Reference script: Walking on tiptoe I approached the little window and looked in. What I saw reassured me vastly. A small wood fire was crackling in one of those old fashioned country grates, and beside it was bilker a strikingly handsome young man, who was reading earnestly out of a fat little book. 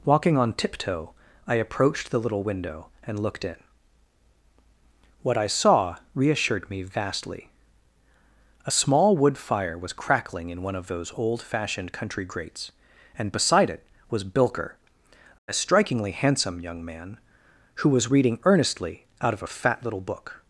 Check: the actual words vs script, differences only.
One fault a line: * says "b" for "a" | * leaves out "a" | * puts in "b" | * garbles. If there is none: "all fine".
all fine